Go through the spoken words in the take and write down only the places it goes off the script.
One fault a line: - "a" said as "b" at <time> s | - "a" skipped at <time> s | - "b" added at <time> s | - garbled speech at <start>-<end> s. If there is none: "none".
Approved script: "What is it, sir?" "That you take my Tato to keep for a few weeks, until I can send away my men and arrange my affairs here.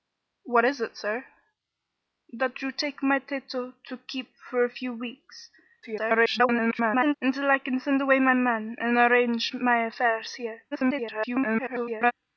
- garbled speech at 5.8-7.1 s
- garbled speech at 10.7-12.1 s